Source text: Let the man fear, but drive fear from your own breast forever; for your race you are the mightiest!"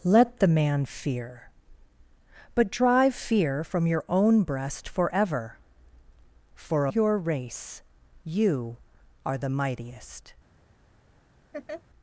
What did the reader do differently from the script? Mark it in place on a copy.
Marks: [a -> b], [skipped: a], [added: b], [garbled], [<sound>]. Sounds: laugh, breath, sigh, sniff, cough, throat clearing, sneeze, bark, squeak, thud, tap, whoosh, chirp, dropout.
Let the man fear, but drive fear from your own breast forever; for your race you are the mightiest!" [laugh]